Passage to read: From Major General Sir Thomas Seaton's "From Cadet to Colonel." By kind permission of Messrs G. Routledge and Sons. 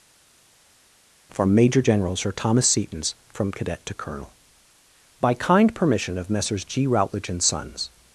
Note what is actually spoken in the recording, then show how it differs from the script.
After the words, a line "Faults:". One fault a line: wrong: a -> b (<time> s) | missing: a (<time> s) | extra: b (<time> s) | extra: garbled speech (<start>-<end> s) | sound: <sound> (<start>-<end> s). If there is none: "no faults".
From Major General Sir Thomas Seaton's "From Cadet to Colonel." By kind permission of Messrs G. Routledge and Sons.
Faults:
no faults